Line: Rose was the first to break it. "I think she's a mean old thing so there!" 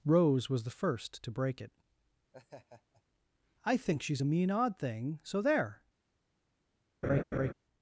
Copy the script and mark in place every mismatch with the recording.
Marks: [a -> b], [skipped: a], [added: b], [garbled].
Rose was the first to break it. "I think she's a mean [old -> odd] thing so there!"